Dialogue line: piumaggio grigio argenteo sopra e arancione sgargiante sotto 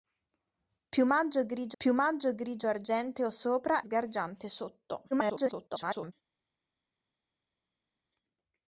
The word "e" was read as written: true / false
false